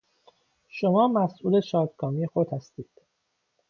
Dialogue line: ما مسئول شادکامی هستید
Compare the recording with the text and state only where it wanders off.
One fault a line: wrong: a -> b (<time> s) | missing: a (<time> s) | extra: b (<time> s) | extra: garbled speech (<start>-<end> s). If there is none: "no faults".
wrong: ما -> شما (0.7 s)
extra: خود (2.2 s)